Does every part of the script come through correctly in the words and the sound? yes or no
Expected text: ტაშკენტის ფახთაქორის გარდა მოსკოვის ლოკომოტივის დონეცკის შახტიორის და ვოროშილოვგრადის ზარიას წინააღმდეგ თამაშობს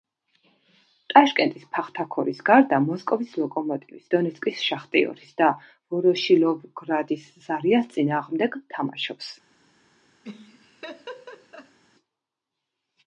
no